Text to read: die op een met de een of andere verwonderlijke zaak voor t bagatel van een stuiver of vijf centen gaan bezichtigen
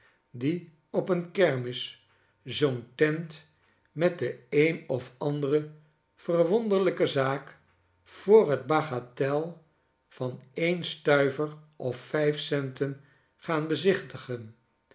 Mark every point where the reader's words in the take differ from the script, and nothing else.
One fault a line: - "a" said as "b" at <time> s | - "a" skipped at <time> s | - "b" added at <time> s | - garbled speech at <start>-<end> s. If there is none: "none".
- "kermis zoo'n tent" added at 1.3 s